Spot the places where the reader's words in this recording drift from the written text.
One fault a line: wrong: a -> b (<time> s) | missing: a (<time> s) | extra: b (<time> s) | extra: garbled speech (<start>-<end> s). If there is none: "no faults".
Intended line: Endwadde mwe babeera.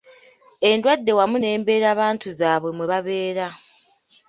extra: wamu n'embeerabantu zaabwe (1.2 s)